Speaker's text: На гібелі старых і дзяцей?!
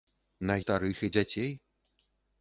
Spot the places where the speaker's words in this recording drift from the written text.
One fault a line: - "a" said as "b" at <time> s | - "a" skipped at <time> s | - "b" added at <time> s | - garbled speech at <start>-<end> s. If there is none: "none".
- "гібелі" skipped at 0.6 s